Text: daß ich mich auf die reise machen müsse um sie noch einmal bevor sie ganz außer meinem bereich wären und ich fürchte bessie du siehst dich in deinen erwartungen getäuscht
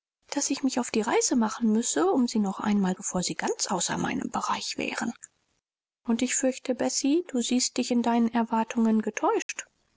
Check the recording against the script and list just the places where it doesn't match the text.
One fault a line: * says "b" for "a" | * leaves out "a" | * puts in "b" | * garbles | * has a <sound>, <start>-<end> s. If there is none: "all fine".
* has a dropout, 9.4-9.5 s